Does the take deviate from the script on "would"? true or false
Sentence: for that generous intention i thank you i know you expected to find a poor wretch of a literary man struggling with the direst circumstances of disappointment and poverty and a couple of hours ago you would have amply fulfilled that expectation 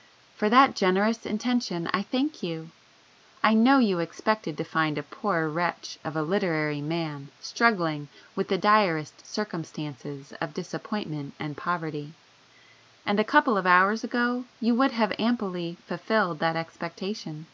false